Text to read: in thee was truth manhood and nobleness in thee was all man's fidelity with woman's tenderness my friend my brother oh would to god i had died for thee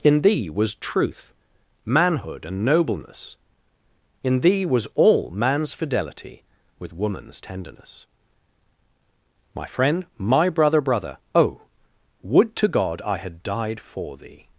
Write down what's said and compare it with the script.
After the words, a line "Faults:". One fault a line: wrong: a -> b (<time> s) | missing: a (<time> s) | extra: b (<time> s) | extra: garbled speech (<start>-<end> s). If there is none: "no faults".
in thee was truth manhood and nobleness in thee was all man's fidelity with woman's tenderness my friend my brother brother oh would to god i had died for thee
Faults:
extra: brother (10.8 s)